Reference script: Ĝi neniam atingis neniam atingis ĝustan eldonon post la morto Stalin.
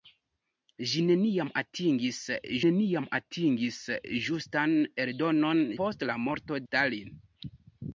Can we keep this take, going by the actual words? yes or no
yes